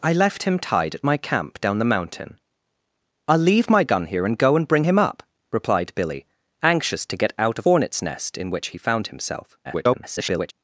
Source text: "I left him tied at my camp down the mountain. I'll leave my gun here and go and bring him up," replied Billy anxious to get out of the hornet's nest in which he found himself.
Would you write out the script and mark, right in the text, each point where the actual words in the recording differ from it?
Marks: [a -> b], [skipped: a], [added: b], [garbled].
"I left him tied at my camp down the mountain. I'll leave my gun here and go and bring him up," replied Billy anxious to get out of [skipped: the] hornet's nest in which he found himself. [garbled]